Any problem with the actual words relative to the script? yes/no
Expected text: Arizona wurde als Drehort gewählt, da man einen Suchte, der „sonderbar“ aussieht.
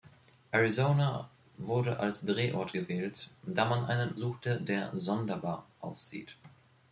no